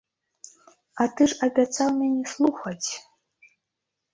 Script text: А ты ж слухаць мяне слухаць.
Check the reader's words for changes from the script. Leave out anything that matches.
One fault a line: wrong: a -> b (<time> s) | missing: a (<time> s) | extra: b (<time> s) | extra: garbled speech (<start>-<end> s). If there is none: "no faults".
wrong: слухаць -> абяцаў (1.5 s)